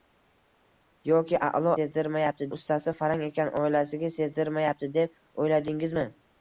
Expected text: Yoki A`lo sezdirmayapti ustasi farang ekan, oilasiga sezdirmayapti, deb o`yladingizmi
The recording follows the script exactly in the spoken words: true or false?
true